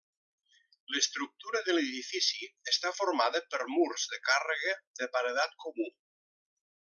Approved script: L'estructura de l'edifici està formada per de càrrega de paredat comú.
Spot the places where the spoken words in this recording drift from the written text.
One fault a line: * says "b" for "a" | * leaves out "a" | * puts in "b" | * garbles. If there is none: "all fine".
* puts in "murs"